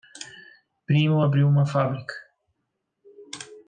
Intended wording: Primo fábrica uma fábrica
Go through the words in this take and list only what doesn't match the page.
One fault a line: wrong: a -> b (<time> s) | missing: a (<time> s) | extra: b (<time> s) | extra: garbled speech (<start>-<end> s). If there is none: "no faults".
wrong: fábrica -> abriu (1.2 s)